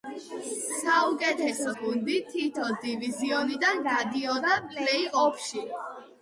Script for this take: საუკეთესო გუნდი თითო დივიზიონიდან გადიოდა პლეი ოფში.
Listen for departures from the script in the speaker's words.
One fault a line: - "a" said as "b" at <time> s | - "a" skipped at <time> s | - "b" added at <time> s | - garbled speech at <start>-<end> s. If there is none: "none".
none